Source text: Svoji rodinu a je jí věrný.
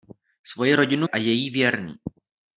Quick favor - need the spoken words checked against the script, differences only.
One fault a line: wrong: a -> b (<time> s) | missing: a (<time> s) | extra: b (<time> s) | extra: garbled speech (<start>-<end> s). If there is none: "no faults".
no faults